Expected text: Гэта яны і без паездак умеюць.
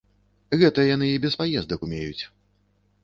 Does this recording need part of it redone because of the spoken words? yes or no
no